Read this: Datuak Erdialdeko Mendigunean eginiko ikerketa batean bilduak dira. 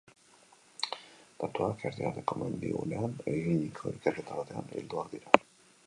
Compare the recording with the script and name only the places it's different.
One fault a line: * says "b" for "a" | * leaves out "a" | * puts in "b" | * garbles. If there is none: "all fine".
all fine